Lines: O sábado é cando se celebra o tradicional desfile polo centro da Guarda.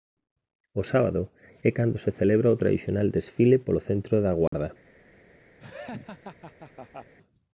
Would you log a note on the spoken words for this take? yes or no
no